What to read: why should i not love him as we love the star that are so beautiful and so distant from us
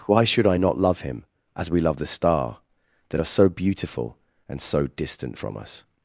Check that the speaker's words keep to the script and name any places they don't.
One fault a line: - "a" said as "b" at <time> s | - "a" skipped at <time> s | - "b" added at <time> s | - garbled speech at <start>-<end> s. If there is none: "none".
none